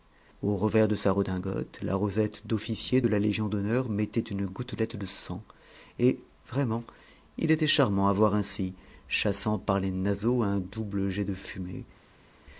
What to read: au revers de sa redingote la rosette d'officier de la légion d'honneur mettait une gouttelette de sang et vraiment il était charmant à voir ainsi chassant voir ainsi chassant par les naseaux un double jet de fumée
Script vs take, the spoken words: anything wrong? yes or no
yes